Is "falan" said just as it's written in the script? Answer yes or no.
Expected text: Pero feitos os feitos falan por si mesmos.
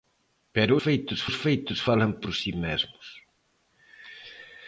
yes